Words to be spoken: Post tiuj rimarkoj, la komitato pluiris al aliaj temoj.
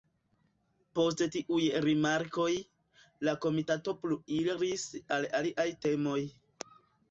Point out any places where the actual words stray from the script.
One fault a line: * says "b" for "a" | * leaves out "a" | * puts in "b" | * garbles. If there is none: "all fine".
all fine